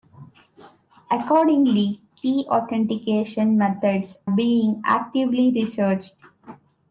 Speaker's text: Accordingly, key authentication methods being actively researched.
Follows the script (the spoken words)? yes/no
yes